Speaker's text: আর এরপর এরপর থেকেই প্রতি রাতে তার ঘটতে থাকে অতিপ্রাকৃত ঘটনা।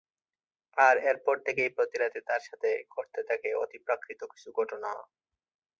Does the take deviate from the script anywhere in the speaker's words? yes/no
yes